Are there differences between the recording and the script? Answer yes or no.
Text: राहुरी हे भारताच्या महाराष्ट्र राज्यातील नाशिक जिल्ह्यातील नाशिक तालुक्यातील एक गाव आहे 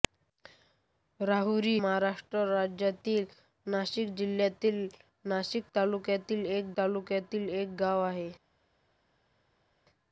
yes